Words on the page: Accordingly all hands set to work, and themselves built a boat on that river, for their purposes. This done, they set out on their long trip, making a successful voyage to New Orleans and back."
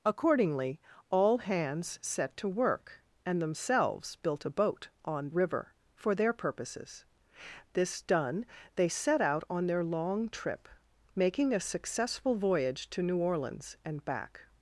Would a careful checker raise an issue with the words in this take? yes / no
yes